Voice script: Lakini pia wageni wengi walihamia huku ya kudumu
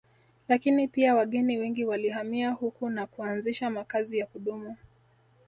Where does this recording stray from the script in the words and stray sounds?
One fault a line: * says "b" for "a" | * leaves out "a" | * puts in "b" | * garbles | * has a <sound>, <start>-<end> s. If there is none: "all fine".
* puts in "na kuanzisha makazi"